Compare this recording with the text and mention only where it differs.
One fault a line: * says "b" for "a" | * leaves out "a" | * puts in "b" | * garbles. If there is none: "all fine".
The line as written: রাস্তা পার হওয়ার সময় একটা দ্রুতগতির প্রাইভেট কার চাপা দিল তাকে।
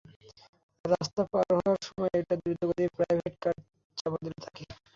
all fine